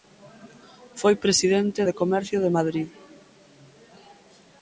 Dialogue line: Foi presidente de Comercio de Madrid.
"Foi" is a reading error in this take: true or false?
false